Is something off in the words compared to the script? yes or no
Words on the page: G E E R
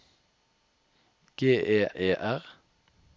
no